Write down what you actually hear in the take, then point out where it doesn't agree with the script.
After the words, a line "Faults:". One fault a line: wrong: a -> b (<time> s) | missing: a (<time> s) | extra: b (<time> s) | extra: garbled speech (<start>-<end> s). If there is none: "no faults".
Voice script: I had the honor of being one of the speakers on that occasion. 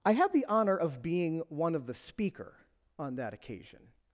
I had the honor of being one of the speaker on that occasion.
Faults:
wrong: speakers -> speaker (1.9 s)